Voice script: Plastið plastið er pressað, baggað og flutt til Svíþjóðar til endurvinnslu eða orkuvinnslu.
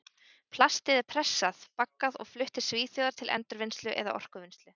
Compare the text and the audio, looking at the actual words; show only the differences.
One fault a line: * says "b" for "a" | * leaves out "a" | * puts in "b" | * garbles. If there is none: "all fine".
* leaves out "plastið"